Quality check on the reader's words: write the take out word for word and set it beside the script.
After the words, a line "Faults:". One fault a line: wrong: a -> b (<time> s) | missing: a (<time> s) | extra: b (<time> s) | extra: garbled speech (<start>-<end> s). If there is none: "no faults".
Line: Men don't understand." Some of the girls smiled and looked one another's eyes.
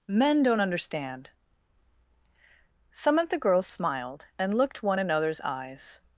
Men don't understand." Some of the girls smiled and looked one another's eyes.
Faults:
no faults